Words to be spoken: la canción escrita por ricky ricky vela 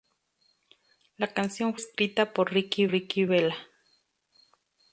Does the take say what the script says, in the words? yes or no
yes